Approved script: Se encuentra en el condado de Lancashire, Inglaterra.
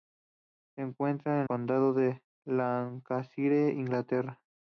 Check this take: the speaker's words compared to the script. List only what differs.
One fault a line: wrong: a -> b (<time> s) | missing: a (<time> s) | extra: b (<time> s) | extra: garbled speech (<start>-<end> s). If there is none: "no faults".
missing: el (1.5 s)